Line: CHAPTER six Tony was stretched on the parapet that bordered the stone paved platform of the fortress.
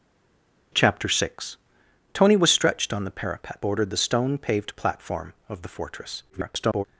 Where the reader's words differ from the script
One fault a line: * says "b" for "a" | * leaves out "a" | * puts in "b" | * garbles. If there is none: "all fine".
* leaves out "that"
* garbles